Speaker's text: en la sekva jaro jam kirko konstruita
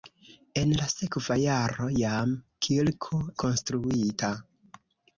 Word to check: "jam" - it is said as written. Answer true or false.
true